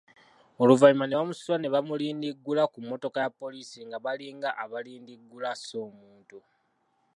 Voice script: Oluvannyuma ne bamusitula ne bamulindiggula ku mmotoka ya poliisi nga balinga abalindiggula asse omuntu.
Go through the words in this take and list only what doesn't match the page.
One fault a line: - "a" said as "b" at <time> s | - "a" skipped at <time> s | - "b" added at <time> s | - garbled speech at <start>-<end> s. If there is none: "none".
none